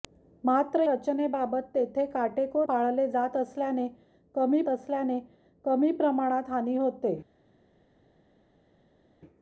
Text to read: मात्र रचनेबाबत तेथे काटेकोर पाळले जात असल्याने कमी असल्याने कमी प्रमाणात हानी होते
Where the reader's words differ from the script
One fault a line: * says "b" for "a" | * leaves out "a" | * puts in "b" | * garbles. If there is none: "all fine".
all fine